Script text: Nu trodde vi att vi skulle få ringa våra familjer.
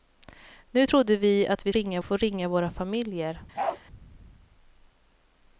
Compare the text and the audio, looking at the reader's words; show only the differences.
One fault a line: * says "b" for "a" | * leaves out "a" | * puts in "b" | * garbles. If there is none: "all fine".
* says "ringa" for "skulle"